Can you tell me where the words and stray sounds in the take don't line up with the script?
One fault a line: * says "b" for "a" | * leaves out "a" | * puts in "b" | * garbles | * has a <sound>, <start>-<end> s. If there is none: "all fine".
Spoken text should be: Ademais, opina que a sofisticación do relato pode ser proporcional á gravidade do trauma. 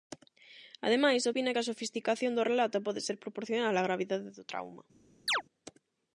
* has a chirp, 5.3-5.4 s